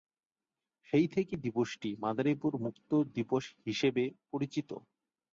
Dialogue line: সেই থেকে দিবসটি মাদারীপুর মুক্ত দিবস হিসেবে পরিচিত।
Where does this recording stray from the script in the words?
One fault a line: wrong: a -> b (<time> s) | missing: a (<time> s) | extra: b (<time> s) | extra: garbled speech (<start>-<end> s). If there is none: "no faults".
no faults